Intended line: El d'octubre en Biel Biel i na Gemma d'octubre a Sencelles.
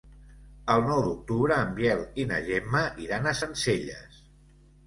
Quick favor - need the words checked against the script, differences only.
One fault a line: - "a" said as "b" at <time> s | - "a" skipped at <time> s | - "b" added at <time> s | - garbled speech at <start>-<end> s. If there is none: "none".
- "nou" added at 0.8 s
- "Biel" skipped at 2.0 s
- "d'octubre" said as "iran" at 3.1 s